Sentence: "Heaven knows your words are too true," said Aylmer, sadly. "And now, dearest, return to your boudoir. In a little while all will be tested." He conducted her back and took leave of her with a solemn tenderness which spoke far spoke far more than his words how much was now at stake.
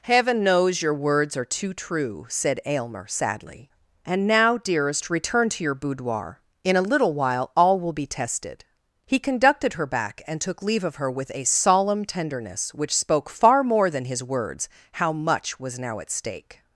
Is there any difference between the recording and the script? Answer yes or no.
yes